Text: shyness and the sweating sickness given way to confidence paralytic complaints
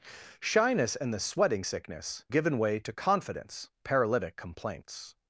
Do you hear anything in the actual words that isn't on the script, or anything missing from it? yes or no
no